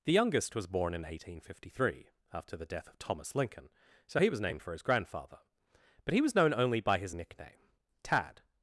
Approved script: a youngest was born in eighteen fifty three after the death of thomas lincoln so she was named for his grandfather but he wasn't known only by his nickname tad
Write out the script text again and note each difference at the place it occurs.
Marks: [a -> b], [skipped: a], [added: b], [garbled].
[a -> the] youngest was born in eighteen fifty three after the death of thomas lincoln so [she -> he] was named for his grandfather but he [wasn't -> was] known only by his nickname tad